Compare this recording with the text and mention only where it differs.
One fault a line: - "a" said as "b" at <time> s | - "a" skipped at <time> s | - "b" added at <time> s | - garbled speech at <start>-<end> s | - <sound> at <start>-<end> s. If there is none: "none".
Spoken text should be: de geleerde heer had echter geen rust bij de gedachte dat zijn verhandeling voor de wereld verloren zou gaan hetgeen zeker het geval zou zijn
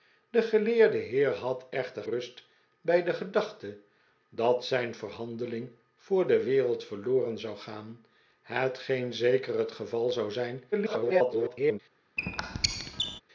- "geen" skipped at 2.0 s
- garbled speech at 10.7-11.8 s
- squeak at 12.2-13.2 s